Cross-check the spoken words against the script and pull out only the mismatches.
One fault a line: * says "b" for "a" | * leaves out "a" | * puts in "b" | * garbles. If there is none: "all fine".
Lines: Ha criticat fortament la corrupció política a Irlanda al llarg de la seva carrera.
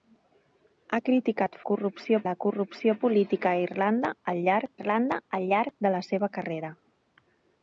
* says "corrupció" for "fortament"
* puts in "Irlanda al llarg"